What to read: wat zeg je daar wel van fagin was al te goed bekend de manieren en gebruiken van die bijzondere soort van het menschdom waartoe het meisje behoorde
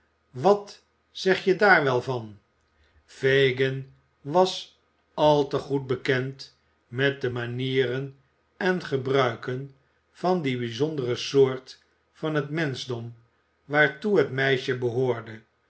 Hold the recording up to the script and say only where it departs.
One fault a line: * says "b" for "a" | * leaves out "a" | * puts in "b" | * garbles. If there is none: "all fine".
* puts in "met"